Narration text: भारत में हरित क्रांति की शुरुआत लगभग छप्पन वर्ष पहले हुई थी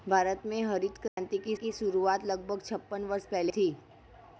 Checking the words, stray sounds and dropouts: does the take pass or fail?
fail